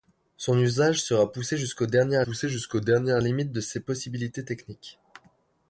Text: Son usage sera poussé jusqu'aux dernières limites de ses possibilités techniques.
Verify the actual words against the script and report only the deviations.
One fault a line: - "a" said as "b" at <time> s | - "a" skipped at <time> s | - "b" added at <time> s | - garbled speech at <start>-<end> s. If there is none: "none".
- "poussé jusqu'aux dernières" added at 2.2 s